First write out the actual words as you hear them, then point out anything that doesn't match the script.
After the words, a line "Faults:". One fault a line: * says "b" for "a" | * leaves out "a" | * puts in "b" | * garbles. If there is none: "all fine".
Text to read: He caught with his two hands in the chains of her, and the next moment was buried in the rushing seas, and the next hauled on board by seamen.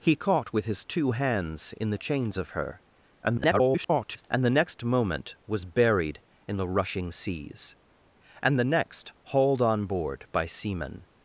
He caught with his two hands in the chains of her, [garbled] and the next moment was buried in the rushing seas, and the next hauled on board by seamen.
Faults:
* garbles